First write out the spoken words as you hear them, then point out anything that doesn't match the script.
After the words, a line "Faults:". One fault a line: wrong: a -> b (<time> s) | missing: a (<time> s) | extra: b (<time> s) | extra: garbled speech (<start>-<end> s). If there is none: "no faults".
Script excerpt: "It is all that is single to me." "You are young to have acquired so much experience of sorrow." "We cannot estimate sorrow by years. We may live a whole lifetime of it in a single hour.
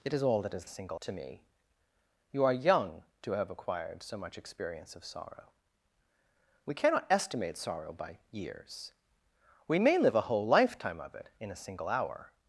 "It is all that is single to me." "You are young to have acquired so much experience of sorrow." "We cannot estimate sorrow by years. We may live a whole lifetime of it in a single hour.
Faults:
no faults